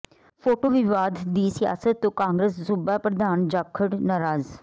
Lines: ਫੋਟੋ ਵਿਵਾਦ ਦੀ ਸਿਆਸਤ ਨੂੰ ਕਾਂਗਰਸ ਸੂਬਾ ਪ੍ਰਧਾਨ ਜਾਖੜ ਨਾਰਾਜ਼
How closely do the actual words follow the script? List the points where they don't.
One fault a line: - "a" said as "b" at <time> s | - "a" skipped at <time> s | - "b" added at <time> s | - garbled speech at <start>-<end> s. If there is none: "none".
- "ਨੂੰ" said as "ਤੋਂ" at 2.0 s